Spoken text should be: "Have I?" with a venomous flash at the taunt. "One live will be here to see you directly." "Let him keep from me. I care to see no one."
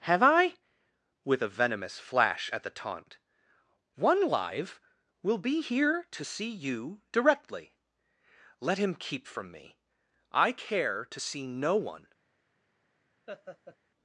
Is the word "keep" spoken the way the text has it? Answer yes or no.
yes